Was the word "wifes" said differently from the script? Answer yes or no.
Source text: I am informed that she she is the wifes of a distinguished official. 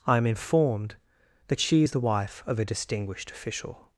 yes